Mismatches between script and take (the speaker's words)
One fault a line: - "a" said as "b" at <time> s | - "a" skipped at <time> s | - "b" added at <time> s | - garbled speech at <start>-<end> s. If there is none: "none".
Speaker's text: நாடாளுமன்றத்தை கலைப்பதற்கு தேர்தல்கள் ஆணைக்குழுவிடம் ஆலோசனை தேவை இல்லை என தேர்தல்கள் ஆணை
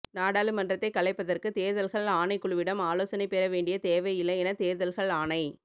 - "பெற வேண்டிய" added at 3.3 s